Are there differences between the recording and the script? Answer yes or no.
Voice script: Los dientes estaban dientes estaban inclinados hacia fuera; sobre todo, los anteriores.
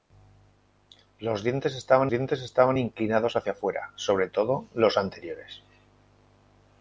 no